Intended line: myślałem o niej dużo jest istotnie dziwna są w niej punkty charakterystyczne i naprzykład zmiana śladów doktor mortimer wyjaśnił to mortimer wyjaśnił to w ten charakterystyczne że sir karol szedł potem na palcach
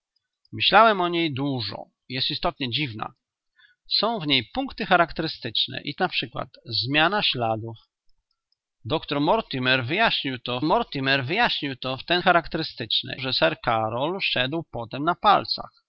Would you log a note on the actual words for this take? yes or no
no